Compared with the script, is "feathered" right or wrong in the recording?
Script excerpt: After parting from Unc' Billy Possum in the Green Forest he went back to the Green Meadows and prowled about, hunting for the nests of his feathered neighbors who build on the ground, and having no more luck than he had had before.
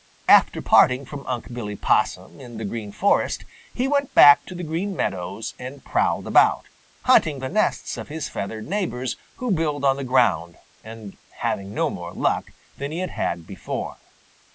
right